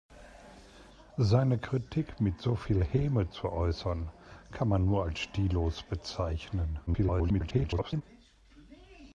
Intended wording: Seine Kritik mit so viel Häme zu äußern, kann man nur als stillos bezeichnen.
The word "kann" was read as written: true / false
true